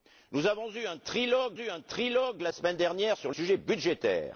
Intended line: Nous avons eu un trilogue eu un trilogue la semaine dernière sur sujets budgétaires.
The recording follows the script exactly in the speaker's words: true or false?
true